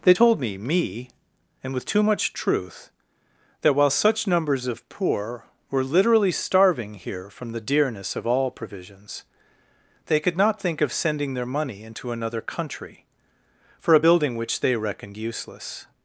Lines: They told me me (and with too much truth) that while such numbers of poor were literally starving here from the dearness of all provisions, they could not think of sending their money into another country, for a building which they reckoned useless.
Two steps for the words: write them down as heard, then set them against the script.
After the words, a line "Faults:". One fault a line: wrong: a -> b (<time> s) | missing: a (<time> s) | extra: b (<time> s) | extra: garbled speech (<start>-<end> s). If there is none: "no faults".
They told me me (and with too much truth) that while such numbers of poor were literally starving here from the dearness of all provisions, they could not think of sending their money into another country, for a building which they reckoned useless.
Faults:
no faults